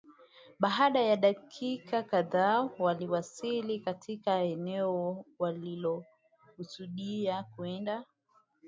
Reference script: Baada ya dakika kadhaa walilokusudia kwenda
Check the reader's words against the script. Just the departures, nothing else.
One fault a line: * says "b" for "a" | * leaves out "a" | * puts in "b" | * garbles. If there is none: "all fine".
* puts in "waliwasili katika eneo"